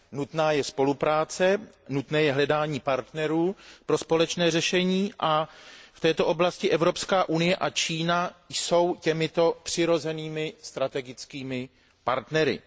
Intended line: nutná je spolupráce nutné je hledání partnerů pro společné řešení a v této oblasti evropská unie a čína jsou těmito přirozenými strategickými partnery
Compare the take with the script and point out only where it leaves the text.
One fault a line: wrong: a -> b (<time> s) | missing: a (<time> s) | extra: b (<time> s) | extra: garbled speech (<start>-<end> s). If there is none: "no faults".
no faults